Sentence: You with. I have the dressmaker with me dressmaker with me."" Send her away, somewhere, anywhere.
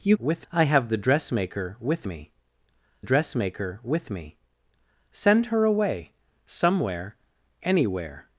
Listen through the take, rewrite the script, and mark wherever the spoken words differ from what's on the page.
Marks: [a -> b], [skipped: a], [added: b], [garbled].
You with. I have the dressmaker with me dressmaker with me."" Send her away, somewhere, anywhere.